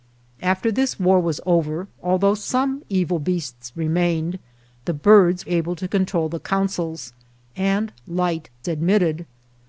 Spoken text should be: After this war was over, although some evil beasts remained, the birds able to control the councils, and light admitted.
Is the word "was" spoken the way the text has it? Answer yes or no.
yes